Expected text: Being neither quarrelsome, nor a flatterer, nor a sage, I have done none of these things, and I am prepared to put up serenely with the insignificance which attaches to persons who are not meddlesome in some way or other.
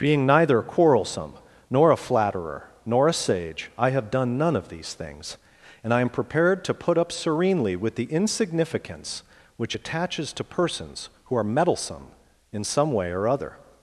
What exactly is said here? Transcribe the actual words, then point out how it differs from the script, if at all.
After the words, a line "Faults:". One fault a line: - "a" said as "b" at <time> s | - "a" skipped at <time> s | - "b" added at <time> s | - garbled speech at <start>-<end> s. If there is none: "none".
Being neither quarrelsome, nor a flatterer, nor a sage, I have done none of these things, and I am prepared to put up serenely with the insignificance which attaches to persons who are meddlesome in some way or other.
Faults:
- "not" skipped at 11.4 s